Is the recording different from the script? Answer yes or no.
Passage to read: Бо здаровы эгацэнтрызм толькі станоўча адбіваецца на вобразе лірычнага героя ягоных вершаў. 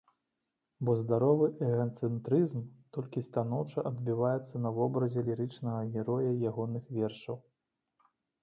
no